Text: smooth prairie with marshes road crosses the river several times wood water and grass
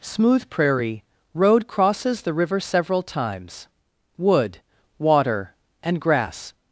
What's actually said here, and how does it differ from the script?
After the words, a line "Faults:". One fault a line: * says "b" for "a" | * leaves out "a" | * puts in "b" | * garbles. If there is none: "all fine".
smooth prairie road crosses the river several times wood water and grass
Faults:
* leaves out "with marshes"